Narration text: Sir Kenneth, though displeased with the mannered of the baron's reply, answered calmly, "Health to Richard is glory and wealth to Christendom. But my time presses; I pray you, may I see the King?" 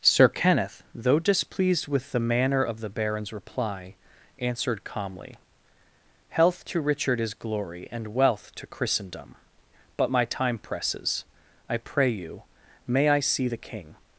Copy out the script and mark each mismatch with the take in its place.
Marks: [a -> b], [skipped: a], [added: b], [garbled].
Sir Kenneth, though displeased with the [mannered -> manner] of the baron's reply, answered calmly, "Health to Richard is glory and wealth to Christendom. But my time presses; I pray you, may I see the King?"